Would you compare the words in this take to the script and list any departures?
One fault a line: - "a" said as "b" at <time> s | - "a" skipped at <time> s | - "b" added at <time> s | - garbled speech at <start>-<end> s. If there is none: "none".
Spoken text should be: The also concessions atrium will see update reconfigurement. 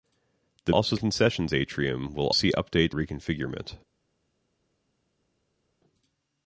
none